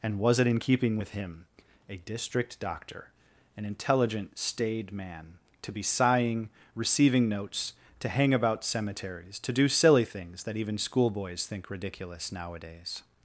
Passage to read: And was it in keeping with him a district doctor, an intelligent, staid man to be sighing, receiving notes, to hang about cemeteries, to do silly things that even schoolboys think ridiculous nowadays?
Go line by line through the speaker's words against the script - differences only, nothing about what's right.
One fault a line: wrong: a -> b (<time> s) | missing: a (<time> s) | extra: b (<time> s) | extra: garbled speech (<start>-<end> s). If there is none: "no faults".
no faults